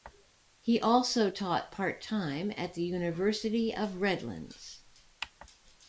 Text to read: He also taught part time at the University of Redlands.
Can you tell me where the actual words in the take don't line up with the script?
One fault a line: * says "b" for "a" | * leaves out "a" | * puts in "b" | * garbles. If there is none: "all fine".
all fine